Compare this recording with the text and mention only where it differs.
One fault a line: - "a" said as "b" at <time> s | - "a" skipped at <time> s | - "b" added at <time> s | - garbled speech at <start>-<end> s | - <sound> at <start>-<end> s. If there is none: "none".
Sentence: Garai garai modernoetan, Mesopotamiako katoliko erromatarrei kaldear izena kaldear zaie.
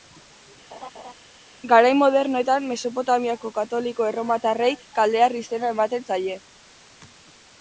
- laugh at 0.7-1.1 s
- "garai" skipped at 1.9 s
- "kaldear" said as "ematen" at 5.8 s